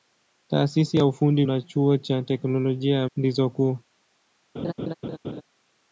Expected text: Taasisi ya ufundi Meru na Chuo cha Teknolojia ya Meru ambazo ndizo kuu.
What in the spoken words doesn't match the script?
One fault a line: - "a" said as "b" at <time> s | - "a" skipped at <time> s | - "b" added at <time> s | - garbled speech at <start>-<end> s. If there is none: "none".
- "Meru" skipped at 1.4 s
- "Meru ambazo" skipped at 3.1 s